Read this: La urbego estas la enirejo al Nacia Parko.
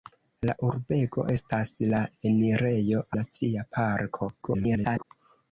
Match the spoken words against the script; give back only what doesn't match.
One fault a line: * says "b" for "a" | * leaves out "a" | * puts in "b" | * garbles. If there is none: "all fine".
* leaves out "al"
* garbles